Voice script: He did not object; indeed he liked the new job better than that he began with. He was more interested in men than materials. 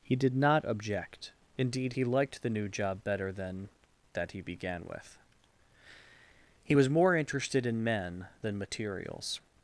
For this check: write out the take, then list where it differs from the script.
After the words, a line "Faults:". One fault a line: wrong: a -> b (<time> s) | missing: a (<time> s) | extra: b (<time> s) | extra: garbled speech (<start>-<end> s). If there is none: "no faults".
He did not object; indeed he liked the new job better than that he began with. He was more interested in men than materials.
Faults:
no faults